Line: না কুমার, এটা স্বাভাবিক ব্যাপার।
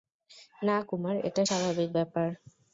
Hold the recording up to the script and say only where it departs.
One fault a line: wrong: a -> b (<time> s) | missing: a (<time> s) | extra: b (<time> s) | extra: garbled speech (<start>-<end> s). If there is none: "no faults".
no faults